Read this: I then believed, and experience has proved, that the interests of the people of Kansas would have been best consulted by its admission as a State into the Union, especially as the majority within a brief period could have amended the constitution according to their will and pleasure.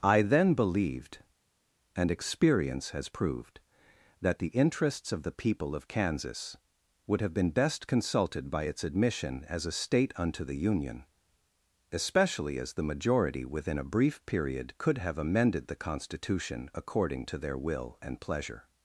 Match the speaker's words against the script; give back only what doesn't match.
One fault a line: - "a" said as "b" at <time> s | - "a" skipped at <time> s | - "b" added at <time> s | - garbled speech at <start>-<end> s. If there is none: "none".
- "into" said as "unto" at 10.2 s